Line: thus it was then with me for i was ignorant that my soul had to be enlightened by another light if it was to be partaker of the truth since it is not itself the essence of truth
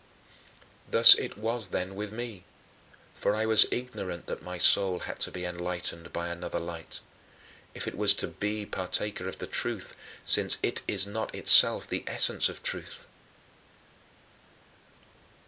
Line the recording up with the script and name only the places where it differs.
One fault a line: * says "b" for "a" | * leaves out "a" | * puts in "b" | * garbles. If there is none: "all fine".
all fine